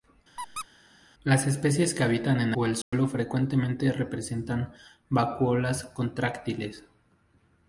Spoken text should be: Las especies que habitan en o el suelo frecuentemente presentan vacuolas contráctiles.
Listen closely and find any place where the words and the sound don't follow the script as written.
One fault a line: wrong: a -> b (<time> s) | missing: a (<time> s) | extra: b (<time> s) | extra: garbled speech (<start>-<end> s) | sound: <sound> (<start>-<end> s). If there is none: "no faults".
sound: squeak (0.4-0.7 s)
sound: dropout (2.8-2.9 s)